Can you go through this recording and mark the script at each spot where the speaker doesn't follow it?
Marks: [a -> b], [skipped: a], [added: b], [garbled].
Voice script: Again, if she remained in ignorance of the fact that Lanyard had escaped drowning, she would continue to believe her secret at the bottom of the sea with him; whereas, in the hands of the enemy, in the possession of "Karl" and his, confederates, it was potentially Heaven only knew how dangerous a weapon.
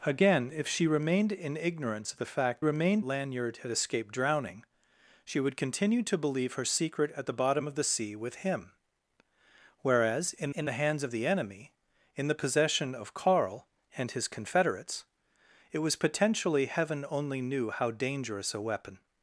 Again, if she remained in ignorance of the fact [that -> remained] Lanyard had escaped drowning, she would continue to believe her secret at the bottom of the sea with him; whereas, in [added: in] the hands of the enemy, in the possession of "Karl" and his, confederates, it was potentially Heaven only knew how dangerous a weapon.